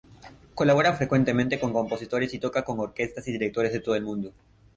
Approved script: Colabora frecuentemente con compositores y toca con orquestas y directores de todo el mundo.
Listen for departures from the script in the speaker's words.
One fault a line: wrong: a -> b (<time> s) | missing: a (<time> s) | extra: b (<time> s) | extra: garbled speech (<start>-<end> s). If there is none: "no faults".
no faults